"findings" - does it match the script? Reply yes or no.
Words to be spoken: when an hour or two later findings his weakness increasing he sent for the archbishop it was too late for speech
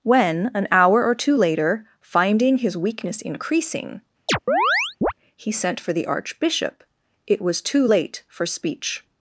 no